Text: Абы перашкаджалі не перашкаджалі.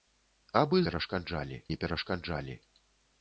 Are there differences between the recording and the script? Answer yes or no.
no